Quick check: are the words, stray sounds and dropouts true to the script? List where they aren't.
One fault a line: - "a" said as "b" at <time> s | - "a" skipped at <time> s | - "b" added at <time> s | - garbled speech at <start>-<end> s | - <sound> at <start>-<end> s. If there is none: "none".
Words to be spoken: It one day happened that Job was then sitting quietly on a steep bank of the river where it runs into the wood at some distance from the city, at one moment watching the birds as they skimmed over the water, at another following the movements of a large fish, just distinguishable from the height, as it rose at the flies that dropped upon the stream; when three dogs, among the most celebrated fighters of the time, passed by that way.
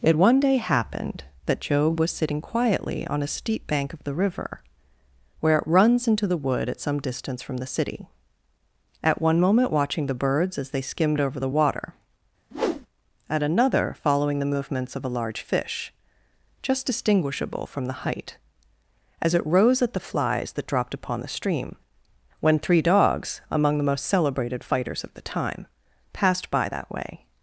- "then" skipped at 2.1 s
- whoosh at 12.5-12.9 s